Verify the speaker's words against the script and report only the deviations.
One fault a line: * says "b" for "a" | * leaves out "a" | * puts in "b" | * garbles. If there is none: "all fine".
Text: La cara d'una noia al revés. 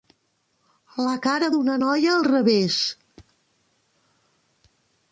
all fine